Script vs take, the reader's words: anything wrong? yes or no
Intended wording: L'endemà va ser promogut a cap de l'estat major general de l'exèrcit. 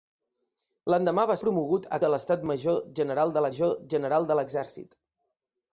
yes